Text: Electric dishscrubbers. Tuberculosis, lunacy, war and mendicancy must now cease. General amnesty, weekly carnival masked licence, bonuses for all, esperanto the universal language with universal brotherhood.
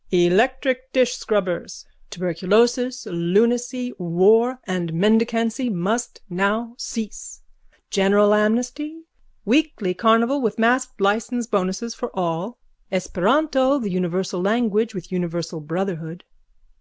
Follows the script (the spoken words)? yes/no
no